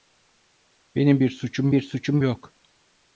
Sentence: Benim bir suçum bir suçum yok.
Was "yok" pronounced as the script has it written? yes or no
yes